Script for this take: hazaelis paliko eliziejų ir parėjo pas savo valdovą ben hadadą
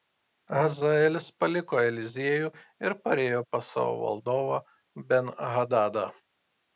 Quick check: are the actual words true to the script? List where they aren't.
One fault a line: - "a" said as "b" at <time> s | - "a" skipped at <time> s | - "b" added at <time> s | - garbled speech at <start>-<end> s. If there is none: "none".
none